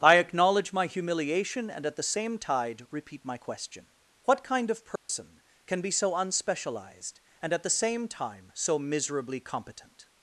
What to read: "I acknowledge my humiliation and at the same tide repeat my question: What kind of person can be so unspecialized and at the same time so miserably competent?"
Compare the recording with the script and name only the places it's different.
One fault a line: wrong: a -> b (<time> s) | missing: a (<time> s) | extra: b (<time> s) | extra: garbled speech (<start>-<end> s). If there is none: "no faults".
no faults